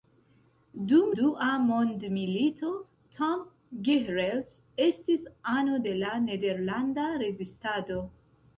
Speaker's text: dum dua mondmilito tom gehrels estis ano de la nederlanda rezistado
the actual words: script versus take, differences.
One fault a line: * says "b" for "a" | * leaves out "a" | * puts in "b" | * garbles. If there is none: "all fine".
all fine